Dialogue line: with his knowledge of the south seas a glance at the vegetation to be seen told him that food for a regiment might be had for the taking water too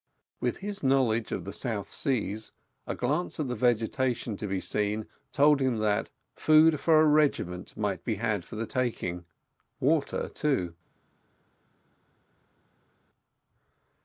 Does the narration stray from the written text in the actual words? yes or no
no